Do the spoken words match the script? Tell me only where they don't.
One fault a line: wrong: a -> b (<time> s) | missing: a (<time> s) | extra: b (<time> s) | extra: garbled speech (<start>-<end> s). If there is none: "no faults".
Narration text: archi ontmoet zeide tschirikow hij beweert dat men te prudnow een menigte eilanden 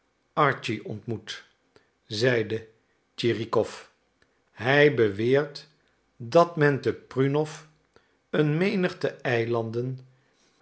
no faults